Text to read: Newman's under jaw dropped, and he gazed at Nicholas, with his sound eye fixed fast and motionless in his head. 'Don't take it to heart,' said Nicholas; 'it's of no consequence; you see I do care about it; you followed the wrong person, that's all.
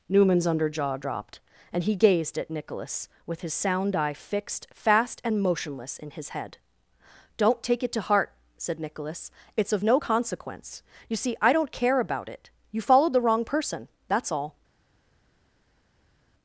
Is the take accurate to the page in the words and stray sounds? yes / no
no